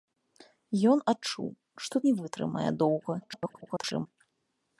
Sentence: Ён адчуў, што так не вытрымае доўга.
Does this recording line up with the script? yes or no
no